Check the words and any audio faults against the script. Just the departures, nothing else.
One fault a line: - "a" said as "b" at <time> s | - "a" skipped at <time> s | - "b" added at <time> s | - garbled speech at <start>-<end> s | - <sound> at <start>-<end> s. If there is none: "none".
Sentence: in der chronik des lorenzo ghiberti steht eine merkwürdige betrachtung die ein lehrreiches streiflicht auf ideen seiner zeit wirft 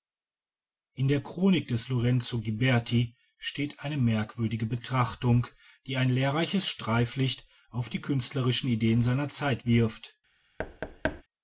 - "die künstlerischen" added at 7.9 s
- thud at 10.6-11.2 s